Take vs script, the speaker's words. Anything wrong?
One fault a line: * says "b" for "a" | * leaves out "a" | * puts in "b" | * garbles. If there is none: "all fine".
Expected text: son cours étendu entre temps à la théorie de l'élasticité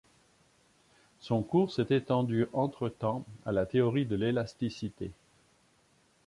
* puts in "s'est"